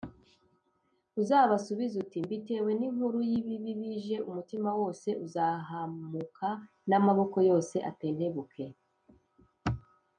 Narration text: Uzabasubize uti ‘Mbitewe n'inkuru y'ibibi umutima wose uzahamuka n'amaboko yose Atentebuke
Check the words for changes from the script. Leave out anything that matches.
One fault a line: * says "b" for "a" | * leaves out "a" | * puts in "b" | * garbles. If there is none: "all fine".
* puts in "bije"